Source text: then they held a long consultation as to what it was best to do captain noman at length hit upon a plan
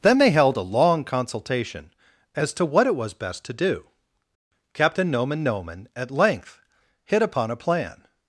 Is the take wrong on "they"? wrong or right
right